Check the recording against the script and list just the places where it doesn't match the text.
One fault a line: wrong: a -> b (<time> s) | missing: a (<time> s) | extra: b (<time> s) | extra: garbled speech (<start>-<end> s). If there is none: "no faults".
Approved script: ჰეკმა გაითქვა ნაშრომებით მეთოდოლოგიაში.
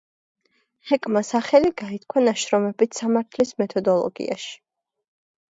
extra: სახელი (1.3 s)
extra: სამართლის (3.0 s)